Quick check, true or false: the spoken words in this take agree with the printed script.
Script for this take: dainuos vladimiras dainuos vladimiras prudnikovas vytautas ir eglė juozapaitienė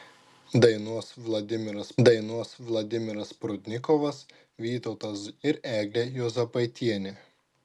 true